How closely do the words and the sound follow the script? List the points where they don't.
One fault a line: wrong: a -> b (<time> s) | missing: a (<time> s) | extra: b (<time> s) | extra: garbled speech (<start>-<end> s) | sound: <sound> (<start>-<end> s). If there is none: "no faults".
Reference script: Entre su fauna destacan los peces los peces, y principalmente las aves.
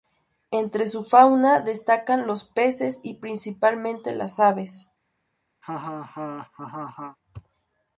missing: los peces (3.0 s)
sound: laugh (5.6-7.2 s)